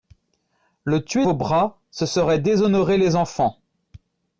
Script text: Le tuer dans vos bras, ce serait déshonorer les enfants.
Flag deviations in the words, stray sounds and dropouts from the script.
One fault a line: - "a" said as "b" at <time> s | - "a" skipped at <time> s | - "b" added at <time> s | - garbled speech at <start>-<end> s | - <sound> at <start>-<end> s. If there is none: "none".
- "dans" skipped at 1.3 s